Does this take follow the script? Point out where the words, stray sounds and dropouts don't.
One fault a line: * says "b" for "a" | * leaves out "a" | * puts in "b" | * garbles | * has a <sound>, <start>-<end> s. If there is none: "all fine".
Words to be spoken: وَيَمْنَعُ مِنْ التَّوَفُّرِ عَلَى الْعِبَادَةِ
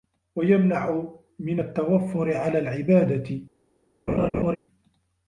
* has a laugh, 4.1-4.6 s